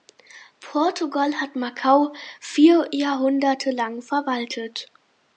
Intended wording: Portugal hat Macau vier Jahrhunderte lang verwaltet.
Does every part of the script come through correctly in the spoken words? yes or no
yes